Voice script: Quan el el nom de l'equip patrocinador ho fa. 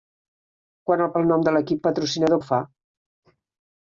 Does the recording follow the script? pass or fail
pass